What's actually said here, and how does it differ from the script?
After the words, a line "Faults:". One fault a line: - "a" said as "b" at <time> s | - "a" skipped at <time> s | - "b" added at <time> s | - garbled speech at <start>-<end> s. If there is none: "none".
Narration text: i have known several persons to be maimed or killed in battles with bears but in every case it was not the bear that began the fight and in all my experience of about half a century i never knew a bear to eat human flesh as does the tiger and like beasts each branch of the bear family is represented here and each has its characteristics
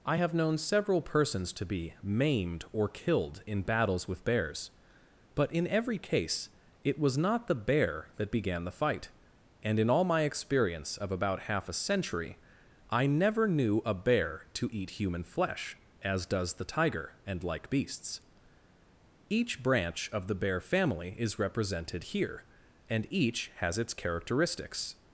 i have known several persons to be maimed or killed in battles with bears but in every case it was not the bear that began the fight and in all my experience of about half a century i never knew a bear to eat human flesh as does the tiger and like beasts each branch of the bear family is represented here and each has its characteristics
Faults:
none